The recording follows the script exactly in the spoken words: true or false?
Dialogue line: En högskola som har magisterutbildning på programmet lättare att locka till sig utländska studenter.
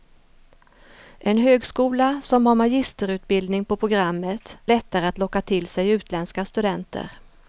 true